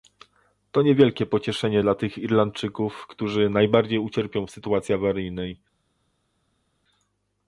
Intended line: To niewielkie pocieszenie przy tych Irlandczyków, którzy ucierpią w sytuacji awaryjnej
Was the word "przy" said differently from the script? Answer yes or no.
yes